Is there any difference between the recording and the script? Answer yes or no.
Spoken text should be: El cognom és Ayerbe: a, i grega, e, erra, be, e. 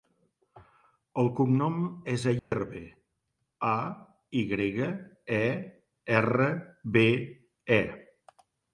no